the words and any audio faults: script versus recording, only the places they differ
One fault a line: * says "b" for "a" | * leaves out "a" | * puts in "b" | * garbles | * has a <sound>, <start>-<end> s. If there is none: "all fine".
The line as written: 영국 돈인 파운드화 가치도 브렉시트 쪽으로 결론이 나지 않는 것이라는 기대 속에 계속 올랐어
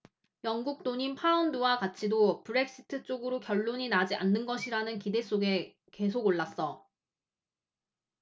all fine